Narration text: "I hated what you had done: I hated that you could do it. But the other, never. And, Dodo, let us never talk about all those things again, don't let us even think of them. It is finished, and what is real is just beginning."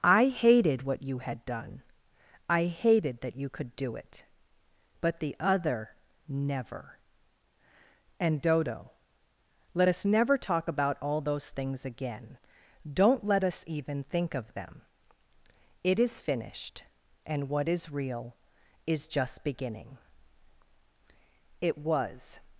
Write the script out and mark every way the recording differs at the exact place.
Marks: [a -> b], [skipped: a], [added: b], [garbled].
"I hated what you had done: I hated that you could do it. But the other, never. And, Dodo, let us never talk about all those things again, don't let us even think of them. It is finished, and what is real is just beginning." [added: It was]